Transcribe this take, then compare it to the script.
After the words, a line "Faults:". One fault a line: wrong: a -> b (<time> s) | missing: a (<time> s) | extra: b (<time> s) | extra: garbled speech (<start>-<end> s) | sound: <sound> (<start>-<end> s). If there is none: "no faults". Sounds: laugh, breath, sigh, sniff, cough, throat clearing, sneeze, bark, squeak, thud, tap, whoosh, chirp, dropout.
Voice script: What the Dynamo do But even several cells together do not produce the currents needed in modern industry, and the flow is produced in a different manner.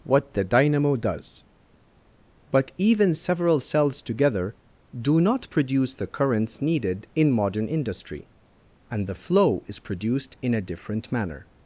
What the Dynamo does But even several cells together do not produce the currents needed in modern industry, and the flow is produced in a different manner.
Faults:
wrong: do -> does (0.9 s)